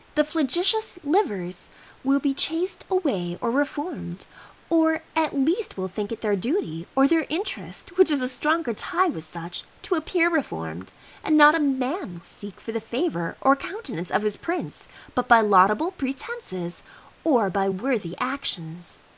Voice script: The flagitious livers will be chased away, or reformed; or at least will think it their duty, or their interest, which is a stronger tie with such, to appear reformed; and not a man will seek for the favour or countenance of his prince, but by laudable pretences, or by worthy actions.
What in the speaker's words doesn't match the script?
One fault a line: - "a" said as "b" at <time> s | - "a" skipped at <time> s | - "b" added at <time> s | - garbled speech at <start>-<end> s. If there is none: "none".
none